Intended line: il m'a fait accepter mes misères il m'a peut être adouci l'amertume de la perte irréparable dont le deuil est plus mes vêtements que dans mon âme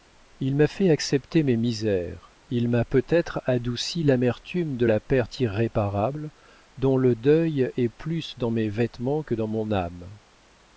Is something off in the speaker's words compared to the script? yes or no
yes